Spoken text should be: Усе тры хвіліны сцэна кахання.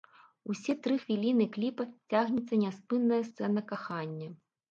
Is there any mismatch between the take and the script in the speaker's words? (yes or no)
yes